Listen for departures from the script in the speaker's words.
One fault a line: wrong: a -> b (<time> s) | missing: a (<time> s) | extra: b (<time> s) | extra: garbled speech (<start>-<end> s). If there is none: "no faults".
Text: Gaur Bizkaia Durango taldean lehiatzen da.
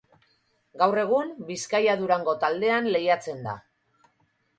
extra: egun (1.0 s)